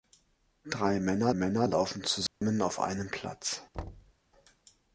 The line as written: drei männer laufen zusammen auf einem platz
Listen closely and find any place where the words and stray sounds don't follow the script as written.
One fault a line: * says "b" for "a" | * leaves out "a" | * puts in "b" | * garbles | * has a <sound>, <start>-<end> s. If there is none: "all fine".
* puts in "männer"
* has a dropout, 2.3-2.4 s
* has a thud, 3.7-4.1 s